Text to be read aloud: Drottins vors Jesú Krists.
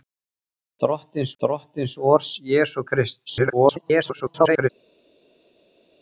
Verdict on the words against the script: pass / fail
fail